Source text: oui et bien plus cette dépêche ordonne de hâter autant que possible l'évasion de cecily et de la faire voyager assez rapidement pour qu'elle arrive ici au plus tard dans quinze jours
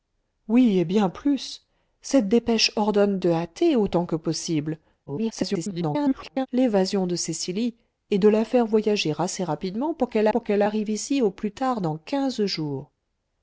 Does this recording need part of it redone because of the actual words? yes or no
yes